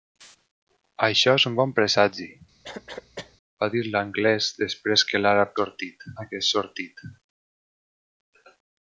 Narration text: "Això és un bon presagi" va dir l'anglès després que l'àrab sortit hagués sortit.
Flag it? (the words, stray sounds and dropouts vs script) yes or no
yes